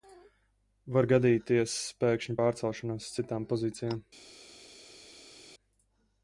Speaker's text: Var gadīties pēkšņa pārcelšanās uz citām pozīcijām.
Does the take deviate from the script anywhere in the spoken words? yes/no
no